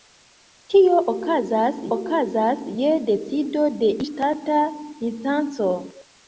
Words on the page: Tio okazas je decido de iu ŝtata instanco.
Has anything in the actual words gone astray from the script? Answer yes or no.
yes